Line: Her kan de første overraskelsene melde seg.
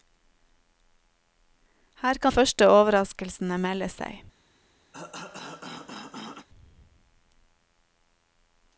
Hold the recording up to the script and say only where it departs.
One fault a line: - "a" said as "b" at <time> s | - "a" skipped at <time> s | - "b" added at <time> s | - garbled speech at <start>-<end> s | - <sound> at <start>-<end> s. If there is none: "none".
- "de" skipped at 2.3 s
- cough at 4.9-6.5 s